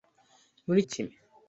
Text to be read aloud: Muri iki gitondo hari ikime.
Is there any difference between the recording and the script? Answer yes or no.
yes